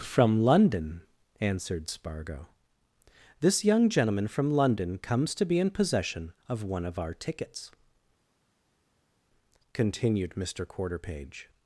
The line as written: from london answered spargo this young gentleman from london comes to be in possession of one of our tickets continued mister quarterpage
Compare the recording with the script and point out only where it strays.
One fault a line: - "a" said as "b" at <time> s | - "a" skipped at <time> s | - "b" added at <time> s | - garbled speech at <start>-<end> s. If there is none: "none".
none